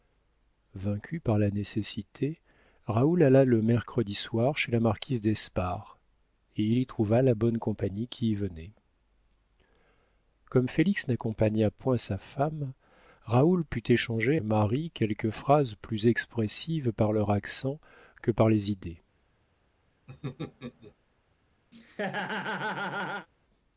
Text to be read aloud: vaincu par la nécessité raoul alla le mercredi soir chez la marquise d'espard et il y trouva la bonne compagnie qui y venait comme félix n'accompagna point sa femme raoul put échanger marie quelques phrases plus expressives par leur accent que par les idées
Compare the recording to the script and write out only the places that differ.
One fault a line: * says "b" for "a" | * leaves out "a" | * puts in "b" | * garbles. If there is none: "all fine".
all fine